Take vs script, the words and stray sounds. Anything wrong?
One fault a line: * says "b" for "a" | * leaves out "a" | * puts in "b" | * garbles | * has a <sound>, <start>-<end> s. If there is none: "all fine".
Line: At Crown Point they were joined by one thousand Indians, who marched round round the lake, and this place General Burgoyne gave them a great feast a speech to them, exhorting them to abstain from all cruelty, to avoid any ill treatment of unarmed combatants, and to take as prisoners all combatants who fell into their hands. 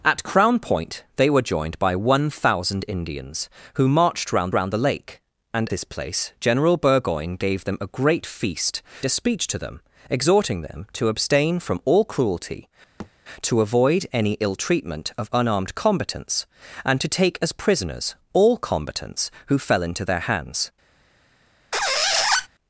* has a thud, 13.0-13.1 s
* has a squeak, 21.7-22.5 s